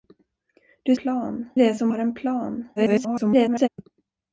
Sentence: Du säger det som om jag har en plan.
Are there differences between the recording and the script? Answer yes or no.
yes